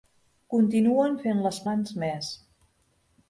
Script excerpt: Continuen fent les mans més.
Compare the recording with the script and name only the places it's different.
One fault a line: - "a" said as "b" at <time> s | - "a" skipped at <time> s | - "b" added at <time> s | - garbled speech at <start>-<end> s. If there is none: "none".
none